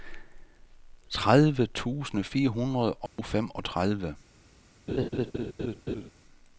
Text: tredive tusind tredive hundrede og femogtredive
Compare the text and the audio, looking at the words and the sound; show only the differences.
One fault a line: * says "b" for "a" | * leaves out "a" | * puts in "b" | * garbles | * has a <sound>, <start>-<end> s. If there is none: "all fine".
* says "fire" for "tredive"
* has a dropout, 3.1-3.2 s
* has a laugh, 4.9-6.1 s